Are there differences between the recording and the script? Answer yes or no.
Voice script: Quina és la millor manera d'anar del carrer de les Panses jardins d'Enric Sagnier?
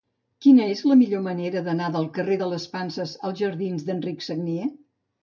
yes